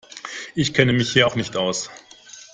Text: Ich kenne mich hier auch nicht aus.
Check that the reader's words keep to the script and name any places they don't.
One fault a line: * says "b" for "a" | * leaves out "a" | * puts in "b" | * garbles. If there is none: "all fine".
all fine